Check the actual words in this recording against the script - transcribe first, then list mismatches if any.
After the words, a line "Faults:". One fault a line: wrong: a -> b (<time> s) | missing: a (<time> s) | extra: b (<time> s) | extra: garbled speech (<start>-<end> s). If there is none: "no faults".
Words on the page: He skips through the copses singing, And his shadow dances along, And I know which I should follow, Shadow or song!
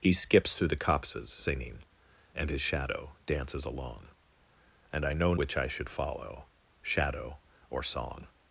He skips through the copses singing, And his shadow dances along, And I know which I should follow, Shadow or song!
Faults:
no faults